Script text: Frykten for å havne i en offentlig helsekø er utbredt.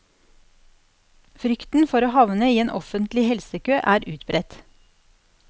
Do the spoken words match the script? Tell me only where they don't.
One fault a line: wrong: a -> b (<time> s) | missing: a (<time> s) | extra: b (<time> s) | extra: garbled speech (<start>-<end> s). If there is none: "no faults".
no faults